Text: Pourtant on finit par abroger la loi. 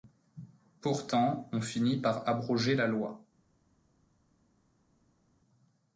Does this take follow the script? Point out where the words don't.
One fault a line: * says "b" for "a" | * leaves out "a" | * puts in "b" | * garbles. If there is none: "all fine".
all fine